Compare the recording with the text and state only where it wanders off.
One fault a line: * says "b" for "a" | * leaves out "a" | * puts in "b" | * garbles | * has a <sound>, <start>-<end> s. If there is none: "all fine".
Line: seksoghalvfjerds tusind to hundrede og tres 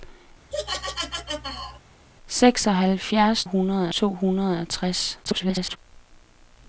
* has a laugh, 0.5-1.8 s
* says "hundrede" for "tusind"
* garbles